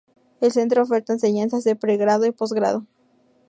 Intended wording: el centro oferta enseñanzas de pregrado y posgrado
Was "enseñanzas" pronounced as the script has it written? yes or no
yes